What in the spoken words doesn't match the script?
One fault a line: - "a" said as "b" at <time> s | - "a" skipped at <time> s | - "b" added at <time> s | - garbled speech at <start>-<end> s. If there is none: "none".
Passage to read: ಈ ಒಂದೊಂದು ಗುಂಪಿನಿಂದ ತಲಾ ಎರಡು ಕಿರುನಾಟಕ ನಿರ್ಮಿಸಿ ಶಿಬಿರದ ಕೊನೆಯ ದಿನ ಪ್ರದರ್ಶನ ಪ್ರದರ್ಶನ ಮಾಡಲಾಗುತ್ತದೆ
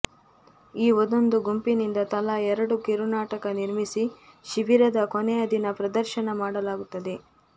- "ಪ್ರದರ್ಶನ" skipped at 6.3 s